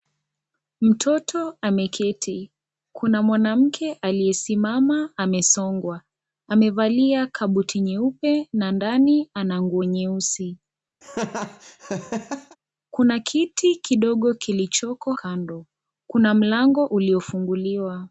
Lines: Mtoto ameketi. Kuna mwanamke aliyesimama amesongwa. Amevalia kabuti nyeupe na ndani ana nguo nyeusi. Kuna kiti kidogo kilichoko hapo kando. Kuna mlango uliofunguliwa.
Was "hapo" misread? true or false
true